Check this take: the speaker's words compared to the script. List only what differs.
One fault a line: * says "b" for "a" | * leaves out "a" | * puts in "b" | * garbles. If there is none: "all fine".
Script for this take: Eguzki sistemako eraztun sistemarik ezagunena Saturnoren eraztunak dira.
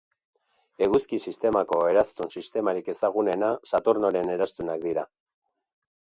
all fine